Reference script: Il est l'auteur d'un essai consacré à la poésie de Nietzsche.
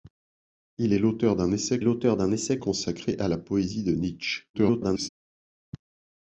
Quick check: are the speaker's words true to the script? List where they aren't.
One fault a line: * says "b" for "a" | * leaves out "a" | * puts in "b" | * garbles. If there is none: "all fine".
* puts in "l'auteur d'un essai"
* garbles